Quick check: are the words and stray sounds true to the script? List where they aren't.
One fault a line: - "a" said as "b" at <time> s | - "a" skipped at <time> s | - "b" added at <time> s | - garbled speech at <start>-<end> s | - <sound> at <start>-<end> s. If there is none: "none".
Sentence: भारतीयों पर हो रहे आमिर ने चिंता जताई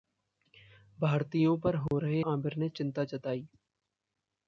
- dropout at 1.9-1.9 s